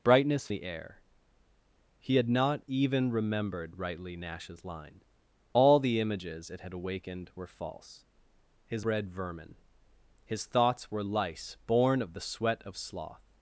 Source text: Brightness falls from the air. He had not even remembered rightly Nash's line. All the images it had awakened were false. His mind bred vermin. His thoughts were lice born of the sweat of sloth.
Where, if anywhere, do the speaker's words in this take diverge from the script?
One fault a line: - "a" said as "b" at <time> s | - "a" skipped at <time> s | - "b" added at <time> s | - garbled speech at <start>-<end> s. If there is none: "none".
- "falls from" skipped at 0.5 s
- "mind" skipped at 8.8 s